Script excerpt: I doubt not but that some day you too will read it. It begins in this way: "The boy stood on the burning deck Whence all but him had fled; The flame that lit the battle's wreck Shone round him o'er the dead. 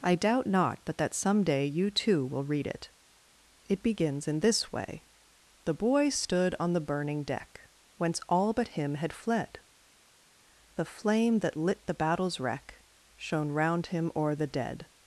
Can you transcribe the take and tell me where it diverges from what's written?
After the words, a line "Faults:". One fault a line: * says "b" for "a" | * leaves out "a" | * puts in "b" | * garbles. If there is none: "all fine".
I doubt not but that some day you too will read it. It begins in this way: "The boy stood on the burning deck Whence all but him had fled; The flame that lit the battle's wreck Shone round him o'er the dead.
Faults:
all fine